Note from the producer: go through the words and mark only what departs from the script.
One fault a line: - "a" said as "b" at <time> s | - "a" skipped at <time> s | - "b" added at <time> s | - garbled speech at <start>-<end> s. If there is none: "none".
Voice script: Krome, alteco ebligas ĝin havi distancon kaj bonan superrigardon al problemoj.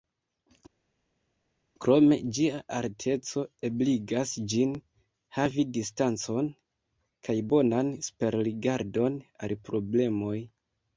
- "ĝia" added at 2.4 s